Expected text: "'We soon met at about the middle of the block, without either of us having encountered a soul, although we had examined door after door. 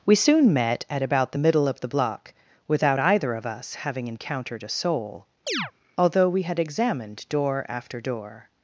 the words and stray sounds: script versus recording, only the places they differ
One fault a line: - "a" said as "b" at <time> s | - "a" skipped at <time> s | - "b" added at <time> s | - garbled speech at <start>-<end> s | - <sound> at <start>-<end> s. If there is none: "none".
- chirp at 5.5-5.7 s